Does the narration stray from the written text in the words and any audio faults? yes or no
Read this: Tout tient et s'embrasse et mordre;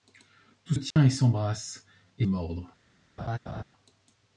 yes